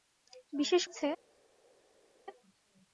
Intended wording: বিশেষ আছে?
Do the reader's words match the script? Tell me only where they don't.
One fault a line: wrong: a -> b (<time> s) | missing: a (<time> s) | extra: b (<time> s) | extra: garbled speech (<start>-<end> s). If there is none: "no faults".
no faults